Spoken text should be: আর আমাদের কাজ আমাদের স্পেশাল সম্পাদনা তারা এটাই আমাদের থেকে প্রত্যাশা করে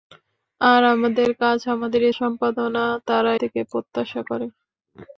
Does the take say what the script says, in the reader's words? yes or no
no